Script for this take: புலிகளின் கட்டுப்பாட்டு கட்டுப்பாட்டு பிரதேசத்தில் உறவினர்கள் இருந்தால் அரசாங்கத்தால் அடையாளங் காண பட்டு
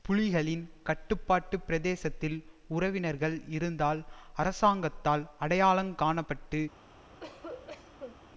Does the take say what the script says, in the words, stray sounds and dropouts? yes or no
no